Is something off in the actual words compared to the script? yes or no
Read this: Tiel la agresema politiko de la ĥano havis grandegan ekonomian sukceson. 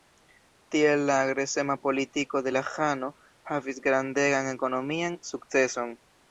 no